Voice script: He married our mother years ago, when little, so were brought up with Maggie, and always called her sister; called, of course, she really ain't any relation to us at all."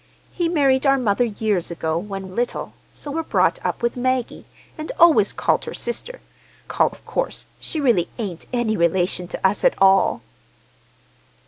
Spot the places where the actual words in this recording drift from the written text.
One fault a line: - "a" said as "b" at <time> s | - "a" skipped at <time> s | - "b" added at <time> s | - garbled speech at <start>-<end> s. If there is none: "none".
none